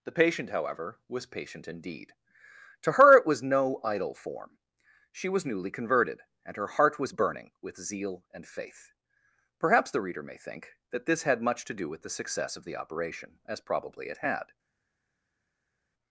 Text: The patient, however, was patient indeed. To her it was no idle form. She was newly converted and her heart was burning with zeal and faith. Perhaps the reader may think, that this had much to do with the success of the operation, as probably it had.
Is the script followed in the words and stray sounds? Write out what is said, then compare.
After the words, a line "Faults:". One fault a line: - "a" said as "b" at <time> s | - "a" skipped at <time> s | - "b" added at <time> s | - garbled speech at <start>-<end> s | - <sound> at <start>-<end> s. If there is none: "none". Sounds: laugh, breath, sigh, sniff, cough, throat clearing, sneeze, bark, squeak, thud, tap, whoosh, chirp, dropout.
The patient, however, was patient indeed. To her it was no idle form. She was newly converted and her heart was burning with zeal and faith. Perhaps the reader may think, that this had much to do with the success of the operation, as probably it had.
Faults:
none